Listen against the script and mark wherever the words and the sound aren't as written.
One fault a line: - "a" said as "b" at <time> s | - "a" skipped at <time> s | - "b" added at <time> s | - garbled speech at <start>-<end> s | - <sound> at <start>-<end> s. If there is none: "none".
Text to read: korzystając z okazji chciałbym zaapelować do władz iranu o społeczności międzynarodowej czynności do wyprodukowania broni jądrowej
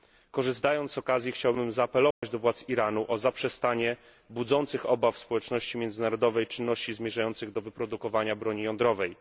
- dropout at 2.1-2.2 s
- "zaprzestanie budzących obawy" added at 3.2 s
- "zmierzających" added at 6.9 s